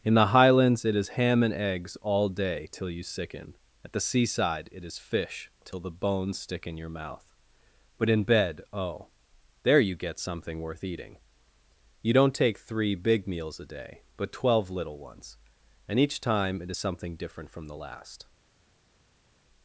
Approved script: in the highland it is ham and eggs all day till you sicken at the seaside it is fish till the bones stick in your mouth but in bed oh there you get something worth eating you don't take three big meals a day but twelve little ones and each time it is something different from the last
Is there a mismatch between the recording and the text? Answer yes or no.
yes